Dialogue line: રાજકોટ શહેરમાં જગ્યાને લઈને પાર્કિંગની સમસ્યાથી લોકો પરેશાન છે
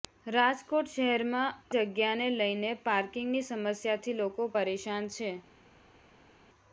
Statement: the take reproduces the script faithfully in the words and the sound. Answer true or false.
true